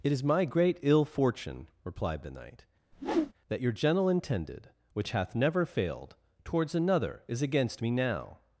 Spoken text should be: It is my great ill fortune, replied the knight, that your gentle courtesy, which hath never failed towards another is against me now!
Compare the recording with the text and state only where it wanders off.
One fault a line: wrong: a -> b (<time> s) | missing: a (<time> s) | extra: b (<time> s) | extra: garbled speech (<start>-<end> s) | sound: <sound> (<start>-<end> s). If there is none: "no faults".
sound: whoosh (2.9-3.3 s)
wrong: courtesy -> intended (4.1 s)